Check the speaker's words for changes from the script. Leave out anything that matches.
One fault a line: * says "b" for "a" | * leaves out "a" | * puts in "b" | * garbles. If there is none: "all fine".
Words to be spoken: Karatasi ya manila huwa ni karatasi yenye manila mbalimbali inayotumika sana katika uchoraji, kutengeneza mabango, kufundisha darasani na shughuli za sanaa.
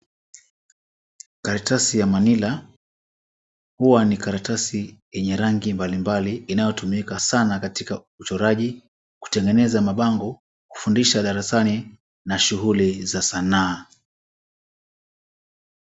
* says "rangi" for "manila"